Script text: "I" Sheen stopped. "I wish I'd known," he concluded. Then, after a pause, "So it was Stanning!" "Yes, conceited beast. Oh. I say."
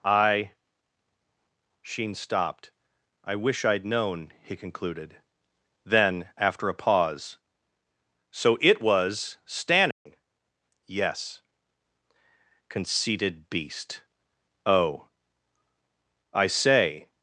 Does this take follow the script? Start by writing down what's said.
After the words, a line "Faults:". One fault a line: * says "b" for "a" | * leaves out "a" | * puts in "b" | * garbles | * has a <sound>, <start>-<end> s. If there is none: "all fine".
"I" Sheen stopped. "I wish I'd known," he concluded. Then, after a pause, "So it was Stanning!" "Yes, conceited beast. Oh. I say."
Faults:
* has a dropout, 9.9-10.1 s